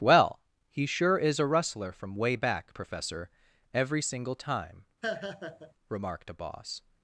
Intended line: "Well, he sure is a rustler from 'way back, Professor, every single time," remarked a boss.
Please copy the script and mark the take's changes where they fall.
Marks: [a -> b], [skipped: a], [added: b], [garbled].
"Well, he sure is a rustler from 'way back, Professor, every single time," remarked a boss.